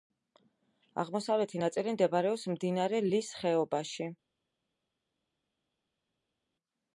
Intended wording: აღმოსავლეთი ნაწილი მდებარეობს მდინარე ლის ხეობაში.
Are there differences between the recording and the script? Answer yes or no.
no